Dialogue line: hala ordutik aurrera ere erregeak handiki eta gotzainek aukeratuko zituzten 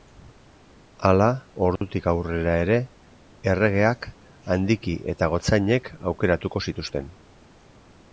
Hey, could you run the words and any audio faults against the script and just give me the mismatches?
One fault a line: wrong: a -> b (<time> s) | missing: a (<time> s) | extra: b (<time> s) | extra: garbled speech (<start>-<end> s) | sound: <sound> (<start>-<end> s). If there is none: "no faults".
sound: dropout (1.8-1.8 s)